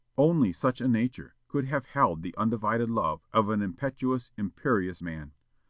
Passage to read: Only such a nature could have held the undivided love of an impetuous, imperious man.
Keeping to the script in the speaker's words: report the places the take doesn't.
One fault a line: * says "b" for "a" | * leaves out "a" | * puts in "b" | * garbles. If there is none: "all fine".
all fine